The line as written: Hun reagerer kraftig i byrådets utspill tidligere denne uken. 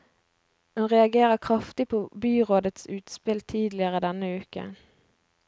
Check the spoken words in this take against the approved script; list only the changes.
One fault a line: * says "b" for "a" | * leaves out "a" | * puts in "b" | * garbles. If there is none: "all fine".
* says "på" for "i"